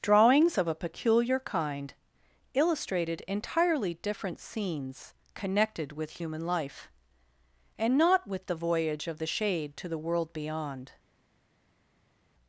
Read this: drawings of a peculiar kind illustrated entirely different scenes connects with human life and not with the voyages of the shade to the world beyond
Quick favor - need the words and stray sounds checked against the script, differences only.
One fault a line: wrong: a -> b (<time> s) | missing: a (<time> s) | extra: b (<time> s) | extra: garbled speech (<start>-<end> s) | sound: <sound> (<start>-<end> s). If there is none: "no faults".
wrong: connects -> connected (5.3 s)
wrong: voyages -> voyage (8.6 s)